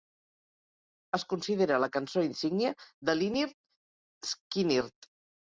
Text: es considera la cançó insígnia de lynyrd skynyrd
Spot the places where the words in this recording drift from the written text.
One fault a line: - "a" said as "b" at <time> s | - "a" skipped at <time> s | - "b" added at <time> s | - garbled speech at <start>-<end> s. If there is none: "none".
none